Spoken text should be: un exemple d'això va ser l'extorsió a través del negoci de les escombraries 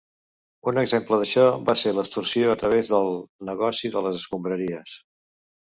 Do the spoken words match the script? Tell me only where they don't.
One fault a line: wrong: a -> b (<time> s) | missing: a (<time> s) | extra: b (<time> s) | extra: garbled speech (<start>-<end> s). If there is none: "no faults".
no faults